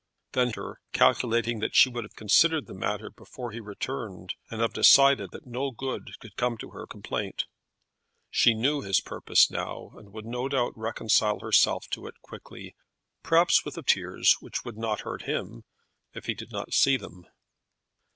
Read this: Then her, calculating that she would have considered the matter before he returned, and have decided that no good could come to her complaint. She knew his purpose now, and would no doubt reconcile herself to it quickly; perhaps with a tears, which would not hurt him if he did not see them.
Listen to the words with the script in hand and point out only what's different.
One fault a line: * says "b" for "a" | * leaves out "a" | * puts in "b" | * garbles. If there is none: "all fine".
all fine